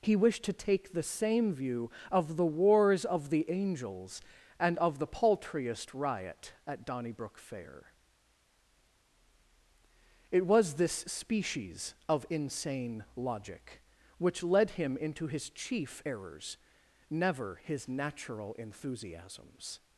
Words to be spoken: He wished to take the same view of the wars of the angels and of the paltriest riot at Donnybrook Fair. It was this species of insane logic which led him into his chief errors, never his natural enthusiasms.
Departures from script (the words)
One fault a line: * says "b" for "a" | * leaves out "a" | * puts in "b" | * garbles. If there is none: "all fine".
all fine